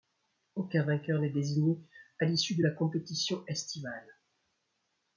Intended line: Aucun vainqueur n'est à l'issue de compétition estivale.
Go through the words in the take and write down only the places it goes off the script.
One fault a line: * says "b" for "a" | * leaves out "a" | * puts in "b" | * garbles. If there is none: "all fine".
* puts in "désigné"
* puts in "la"